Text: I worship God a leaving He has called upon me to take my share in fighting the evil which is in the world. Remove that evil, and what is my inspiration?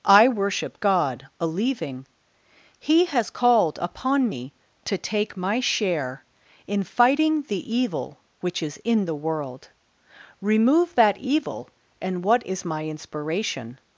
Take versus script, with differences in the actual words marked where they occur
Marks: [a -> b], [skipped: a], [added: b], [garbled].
I worship God a leaving He has called upon me to take my share in fighting the evil which is in the world. Remove that evil, and what is my inspiration?